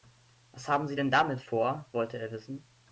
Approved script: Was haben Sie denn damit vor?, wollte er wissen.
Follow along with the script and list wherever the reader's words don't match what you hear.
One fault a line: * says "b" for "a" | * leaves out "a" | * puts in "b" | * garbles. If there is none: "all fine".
all fine